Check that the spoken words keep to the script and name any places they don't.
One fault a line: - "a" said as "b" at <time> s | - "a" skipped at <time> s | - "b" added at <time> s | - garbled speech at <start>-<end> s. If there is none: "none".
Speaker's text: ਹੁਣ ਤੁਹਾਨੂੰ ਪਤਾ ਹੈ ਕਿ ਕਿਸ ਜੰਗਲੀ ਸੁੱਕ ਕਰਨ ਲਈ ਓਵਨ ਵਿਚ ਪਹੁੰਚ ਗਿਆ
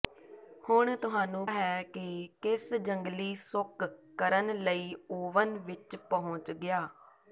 - "ਪਤਾ" skipped at 1.5 s